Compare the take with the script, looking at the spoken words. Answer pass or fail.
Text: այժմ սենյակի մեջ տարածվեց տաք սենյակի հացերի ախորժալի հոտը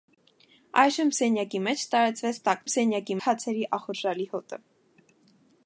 pass